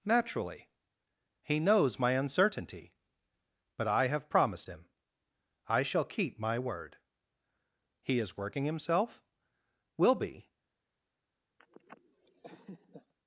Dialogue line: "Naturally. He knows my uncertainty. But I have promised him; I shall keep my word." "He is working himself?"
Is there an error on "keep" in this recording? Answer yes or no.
no